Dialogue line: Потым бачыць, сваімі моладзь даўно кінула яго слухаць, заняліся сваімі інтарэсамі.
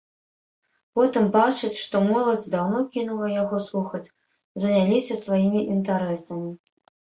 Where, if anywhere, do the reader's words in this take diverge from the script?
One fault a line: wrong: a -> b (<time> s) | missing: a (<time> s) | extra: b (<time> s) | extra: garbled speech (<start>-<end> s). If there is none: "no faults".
wrong: сваімі -> што (1.8 s)